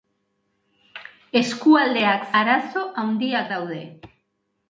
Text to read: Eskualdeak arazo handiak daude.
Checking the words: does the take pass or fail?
pass